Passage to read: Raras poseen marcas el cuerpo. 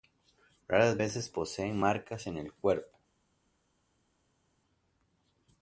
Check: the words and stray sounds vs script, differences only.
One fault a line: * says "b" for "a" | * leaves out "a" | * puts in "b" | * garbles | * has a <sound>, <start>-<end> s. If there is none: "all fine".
* puts in "veces"
* puts in "en"